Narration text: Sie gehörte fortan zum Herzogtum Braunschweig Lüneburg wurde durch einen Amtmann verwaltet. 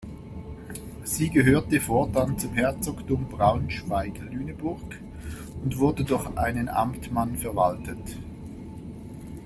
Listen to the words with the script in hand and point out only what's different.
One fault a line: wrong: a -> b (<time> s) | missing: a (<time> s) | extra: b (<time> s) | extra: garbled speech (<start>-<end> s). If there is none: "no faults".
extra: und (5.6 s)